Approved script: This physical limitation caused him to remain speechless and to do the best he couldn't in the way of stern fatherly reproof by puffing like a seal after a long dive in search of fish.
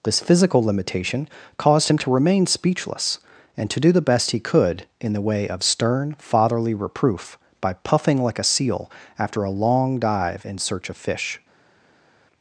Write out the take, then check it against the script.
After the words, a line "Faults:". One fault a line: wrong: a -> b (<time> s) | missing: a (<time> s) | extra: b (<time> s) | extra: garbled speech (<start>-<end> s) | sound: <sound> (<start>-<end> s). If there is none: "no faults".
This physical limitation caused him to remain speechless and to do the best he could in the way of stern fatherly reproof by puffing like a seal after a long dive in search of fish.
Faults:
wrong: couldn't -> could (4.4 s)